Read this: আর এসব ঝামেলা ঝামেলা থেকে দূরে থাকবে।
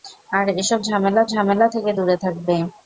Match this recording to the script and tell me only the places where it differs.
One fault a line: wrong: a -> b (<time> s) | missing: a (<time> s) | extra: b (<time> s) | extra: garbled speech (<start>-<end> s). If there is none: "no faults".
no faults